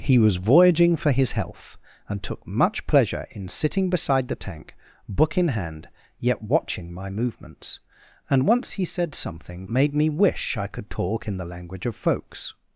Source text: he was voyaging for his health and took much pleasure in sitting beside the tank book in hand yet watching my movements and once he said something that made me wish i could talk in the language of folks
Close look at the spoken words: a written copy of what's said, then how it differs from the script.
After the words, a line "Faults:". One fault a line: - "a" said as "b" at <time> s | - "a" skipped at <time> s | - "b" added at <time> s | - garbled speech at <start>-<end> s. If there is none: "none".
he was voyaging for his health and took much pleasure in sitting beside the tank book in hand yet watching my movements and once he said something made me wish i could talk in the language of folks
Faults:
- "that" skipped at 9.7 s